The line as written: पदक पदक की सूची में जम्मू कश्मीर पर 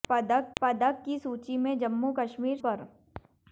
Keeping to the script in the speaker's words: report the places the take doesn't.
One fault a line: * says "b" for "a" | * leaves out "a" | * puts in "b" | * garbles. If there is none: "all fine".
all fine